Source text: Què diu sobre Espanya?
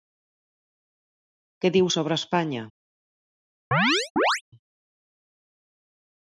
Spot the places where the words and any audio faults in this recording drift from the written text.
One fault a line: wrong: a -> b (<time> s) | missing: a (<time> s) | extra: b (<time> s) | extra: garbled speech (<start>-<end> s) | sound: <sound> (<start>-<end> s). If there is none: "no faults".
sound: chirp (3.7-4.4 s)